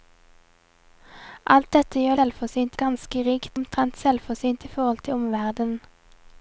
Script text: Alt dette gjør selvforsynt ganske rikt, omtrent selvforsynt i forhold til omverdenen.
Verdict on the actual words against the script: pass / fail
pass